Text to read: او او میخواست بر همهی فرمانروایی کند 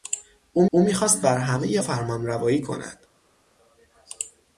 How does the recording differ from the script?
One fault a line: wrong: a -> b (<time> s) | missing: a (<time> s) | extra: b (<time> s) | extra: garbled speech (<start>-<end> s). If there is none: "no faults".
no faults